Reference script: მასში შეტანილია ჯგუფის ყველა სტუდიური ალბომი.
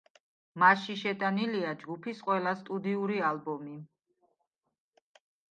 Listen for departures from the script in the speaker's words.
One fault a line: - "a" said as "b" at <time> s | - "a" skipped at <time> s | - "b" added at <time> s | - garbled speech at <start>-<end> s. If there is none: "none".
none